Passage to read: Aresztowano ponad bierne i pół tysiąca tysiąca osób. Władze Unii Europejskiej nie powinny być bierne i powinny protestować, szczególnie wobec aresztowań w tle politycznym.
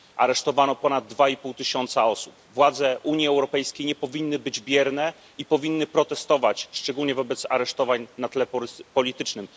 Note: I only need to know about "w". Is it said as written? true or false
false